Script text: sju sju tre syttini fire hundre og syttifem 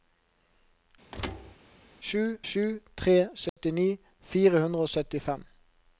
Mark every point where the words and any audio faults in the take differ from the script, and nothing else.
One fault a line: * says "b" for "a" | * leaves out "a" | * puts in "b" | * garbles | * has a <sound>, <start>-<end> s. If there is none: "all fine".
* has a thud, 1.1-1.6 s
* has a dropout, 3.5-3.6 s